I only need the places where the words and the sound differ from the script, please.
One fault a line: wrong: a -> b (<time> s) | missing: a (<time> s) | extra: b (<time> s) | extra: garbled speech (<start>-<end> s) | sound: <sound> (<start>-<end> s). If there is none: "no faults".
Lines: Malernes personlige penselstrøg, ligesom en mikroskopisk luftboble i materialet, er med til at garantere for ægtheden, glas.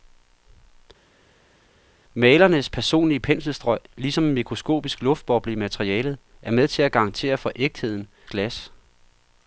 no faults